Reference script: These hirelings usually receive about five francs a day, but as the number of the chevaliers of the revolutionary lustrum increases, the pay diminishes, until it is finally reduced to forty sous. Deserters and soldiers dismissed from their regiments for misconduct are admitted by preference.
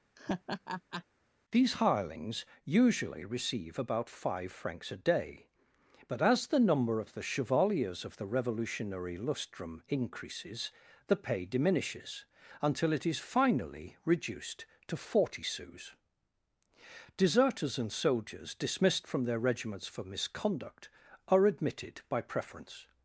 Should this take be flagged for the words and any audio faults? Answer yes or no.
yes